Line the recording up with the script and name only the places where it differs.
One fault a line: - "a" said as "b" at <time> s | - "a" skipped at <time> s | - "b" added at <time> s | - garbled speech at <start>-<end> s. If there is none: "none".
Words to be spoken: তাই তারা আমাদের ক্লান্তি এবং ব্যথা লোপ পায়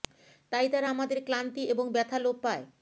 none